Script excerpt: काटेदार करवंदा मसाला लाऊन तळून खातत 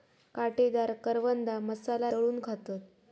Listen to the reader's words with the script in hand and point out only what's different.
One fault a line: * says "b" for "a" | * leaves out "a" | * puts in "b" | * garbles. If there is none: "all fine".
* leaves out "लाऊन"